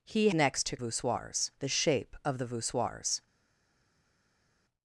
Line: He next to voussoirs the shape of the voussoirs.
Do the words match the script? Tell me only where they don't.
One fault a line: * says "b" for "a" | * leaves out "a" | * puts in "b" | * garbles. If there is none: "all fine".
all fine